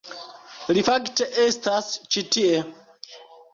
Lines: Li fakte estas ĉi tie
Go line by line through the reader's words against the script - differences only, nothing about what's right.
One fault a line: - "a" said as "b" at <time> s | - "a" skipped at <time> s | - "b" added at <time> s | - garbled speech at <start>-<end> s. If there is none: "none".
none